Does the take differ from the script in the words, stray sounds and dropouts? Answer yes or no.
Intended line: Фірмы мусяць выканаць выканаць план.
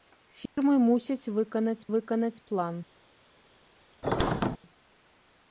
yes